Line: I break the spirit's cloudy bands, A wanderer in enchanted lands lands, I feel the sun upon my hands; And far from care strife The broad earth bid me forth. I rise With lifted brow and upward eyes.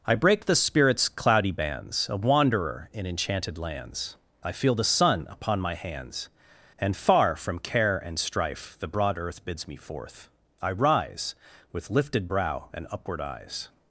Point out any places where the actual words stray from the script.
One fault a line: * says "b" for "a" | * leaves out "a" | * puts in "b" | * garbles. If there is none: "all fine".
* leaves out "lands"
* puts in "and"
* says "bids" for "bid"